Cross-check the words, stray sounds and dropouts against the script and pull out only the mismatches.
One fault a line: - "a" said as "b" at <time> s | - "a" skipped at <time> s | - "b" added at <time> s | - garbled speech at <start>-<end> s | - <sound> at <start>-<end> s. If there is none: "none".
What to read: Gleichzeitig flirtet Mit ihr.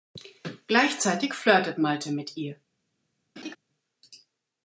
- "Malte" added at 1.8 s
- laugh at 3.4-3.6 s